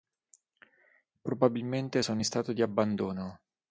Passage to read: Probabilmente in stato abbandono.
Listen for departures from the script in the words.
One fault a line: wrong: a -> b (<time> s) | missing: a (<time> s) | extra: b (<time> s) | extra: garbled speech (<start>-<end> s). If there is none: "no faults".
extra: sono (2.0 s)
extra: di (2.5 s)